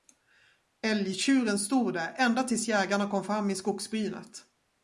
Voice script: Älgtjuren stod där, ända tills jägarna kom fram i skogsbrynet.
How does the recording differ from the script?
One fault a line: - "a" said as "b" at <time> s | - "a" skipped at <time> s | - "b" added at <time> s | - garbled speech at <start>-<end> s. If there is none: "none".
none